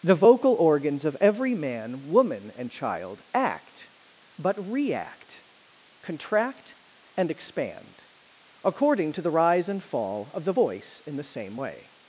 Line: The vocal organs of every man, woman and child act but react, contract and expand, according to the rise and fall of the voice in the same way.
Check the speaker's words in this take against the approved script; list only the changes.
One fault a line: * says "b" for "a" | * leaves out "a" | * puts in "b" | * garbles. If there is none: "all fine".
all fine